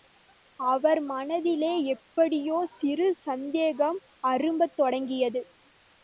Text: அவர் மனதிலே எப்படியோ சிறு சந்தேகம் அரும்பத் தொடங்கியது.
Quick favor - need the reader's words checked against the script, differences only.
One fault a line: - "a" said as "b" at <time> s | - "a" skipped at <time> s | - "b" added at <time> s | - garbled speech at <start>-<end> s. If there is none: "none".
none